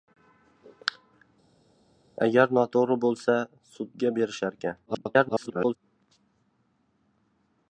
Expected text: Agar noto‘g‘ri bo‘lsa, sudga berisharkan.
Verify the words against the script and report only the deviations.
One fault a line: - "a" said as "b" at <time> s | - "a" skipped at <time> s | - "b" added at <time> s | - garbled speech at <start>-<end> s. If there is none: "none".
- garbled speech at 4.9-5.8 s